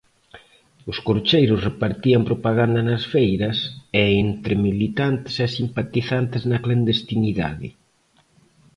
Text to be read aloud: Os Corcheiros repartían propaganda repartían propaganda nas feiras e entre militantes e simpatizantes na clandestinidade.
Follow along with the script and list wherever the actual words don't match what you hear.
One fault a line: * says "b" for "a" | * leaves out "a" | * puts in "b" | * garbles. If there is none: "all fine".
* leaves out "repartían propaganda"